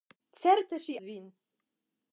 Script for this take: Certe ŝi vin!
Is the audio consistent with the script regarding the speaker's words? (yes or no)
yes